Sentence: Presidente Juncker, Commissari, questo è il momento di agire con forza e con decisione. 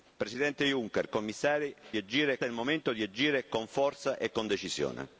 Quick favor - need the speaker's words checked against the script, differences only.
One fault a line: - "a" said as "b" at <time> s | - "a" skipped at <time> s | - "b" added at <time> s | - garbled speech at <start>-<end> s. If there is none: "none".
- "questo" said as "agire" at 2.0 s